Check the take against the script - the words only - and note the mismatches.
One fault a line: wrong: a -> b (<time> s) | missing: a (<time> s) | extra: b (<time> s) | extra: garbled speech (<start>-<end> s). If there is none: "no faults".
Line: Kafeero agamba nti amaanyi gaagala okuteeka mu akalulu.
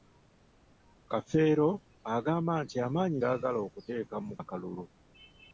no faults